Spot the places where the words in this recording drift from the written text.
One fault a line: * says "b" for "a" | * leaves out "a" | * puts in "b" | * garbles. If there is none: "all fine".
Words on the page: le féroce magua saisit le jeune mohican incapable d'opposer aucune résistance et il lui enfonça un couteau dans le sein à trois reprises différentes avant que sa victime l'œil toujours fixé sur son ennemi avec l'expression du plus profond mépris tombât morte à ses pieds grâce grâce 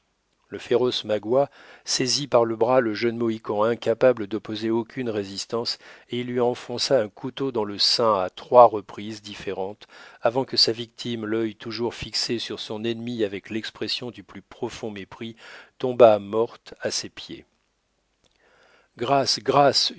* puts in "par le bras"